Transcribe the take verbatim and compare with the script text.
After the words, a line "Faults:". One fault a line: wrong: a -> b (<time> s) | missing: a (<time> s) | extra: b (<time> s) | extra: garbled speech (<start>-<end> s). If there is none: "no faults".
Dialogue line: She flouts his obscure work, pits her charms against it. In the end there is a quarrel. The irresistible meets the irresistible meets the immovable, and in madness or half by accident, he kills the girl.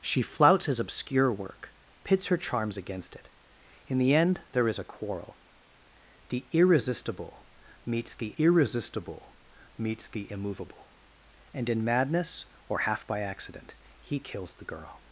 She flouts his obscure work, pits her charms against it. In the end there is a quarrel. The irresistible meets the irresistible meets the immovable, and in madness or half by accident, he kills the girl.
Faults:
no faults